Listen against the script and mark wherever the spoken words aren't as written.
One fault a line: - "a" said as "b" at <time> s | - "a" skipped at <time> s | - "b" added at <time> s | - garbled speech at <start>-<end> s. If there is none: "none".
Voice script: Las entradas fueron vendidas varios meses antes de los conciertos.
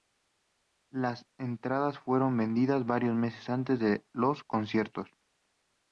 none